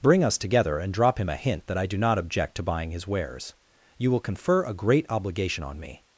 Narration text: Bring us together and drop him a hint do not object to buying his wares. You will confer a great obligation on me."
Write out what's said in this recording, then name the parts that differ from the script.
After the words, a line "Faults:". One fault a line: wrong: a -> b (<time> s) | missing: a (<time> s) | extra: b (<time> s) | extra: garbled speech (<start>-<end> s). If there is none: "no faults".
Bring us together and drop him a hint that I do not object to buying his wares. You will confer a great obligation on me."
Faults:
extra: that I (1.7 s)